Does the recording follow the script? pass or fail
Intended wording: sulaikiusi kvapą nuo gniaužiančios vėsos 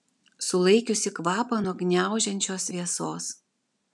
pass